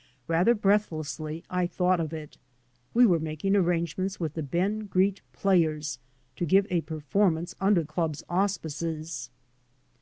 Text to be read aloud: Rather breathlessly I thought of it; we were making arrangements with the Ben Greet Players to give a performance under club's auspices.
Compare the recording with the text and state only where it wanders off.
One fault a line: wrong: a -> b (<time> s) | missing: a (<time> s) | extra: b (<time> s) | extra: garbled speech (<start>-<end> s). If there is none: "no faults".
no faults